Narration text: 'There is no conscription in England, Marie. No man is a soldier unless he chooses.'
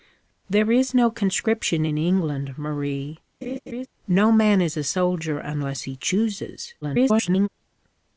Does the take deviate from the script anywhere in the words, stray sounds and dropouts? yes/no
yes